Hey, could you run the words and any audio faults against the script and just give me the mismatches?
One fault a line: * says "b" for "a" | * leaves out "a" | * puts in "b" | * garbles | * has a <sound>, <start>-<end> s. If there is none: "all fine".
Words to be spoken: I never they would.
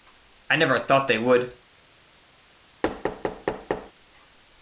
* puts in "thought"
* has a thud, 2.8-3.9 s